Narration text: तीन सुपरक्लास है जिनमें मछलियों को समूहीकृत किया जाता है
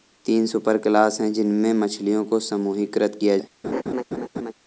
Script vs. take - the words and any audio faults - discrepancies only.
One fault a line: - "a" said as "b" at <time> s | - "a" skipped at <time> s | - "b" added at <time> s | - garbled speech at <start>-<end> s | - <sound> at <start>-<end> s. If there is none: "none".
- "जाता" skipped at 3.4 s
- laugh at 3.6-4.5 s